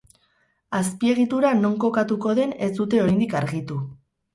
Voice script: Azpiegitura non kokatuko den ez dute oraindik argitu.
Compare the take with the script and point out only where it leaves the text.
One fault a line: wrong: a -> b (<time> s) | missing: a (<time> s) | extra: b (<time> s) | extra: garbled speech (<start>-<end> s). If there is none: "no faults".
no faults